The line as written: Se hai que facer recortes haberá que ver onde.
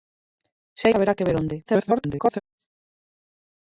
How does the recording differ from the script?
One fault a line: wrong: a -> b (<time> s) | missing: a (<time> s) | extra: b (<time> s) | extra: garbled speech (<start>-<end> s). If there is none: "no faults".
missing: que facer recortes (0.9 s)
extra: garbled speech (1.7-2.4 s)